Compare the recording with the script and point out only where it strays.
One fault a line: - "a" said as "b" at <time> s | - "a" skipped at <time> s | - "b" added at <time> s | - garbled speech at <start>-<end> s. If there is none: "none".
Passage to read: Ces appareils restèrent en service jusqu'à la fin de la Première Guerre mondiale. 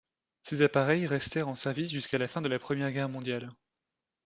none